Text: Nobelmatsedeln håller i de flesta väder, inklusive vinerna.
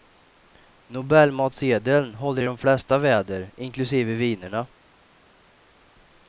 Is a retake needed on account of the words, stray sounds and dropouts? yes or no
no